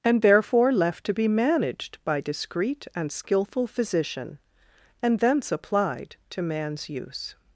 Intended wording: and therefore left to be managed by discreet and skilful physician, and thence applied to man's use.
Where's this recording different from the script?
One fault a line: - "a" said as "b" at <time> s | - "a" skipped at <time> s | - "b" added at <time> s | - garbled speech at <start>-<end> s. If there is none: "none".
none